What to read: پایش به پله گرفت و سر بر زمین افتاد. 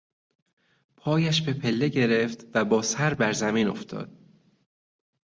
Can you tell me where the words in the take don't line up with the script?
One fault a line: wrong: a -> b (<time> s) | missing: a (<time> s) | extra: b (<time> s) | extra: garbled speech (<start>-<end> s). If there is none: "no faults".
extra: با (2.6 s)